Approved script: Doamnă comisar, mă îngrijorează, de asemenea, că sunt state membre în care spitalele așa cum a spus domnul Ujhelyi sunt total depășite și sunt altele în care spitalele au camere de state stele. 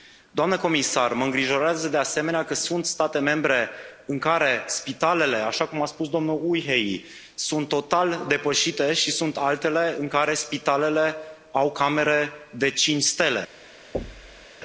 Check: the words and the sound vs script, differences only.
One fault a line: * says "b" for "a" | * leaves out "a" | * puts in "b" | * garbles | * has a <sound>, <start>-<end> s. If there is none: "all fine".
* says "cinci" for "state"
* has a thud, 13.9-14.5 s